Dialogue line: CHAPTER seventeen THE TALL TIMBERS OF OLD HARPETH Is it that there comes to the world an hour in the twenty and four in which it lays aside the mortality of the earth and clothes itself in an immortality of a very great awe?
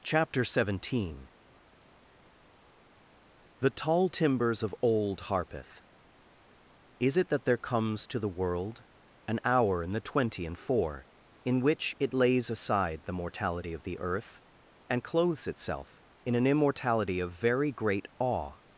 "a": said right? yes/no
no